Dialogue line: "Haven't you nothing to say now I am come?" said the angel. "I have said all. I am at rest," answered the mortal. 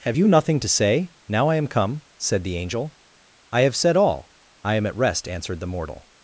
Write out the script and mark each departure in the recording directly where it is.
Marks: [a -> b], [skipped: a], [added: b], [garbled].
["Haven't -> Have] you nothing to say now I am come?" said the angel. "I have said all. I am at rest," answered the mortal.